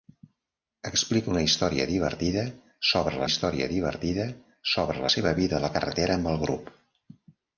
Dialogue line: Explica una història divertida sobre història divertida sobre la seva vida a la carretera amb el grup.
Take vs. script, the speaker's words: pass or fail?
pass